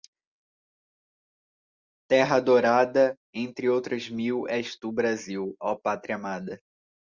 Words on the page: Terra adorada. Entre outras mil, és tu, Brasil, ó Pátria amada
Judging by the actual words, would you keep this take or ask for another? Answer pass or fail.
pass